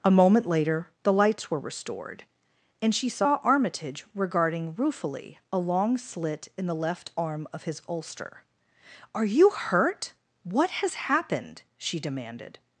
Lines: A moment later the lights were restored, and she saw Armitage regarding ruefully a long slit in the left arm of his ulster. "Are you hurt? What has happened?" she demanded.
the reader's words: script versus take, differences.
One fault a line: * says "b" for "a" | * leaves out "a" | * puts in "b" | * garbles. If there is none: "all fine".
all fine